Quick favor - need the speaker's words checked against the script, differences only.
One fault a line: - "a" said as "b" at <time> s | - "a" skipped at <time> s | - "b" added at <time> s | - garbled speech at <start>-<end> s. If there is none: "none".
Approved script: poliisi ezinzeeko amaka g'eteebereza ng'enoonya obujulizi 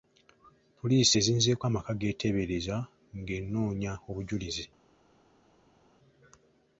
none